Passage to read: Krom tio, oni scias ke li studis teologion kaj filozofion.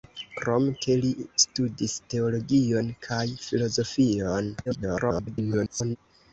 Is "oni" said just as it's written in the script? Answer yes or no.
no